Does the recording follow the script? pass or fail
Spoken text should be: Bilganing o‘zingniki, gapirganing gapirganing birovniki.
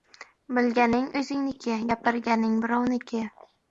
fail